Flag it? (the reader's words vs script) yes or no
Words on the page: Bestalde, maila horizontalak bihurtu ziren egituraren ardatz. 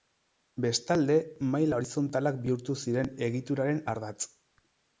no